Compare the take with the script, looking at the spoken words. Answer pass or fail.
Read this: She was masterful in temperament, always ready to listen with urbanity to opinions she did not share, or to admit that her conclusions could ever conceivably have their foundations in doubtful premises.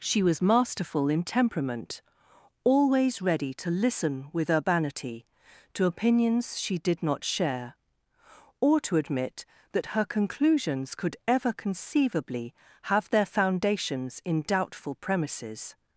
pass